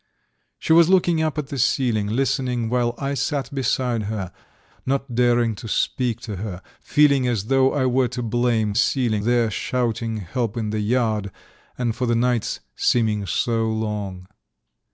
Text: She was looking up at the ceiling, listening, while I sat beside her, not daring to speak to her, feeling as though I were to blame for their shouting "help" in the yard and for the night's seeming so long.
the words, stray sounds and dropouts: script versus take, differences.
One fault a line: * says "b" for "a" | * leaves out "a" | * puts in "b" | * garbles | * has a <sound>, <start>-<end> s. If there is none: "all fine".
* says "ceiling" for "for"